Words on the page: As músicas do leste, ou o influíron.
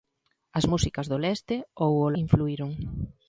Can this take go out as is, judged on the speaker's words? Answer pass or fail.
pass